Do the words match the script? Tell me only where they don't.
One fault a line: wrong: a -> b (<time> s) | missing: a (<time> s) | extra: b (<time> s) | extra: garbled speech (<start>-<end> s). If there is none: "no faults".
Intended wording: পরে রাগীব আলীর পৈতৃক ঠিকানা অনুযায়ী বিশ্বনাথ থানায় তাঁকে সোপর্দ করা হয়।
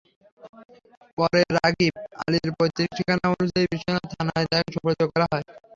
no faults